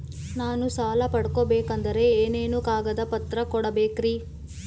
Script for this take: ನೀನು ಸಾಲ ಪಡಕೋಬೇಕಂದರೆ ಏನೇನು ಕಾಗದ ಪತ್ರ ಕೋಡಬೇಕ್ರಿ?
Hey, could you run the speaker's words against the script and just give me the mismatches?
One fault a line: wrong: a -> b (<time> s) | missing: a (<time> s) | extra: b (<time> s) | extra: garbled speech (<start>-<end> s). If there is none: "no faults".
wrong: ನೀನು -> ನಾನು (0.3 s)